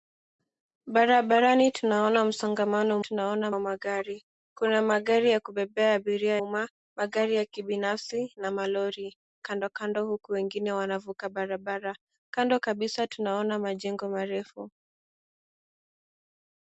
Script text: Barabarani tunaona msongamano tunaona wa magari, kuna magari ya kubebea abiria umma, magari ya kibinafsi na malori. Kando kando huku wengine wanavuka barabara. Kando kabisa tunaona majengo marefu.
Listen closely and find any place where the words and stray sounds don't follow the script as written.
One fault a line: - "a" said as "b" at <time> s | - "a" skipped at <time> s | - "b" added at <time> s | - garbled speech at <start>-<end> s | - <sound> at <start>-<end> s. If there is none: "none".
none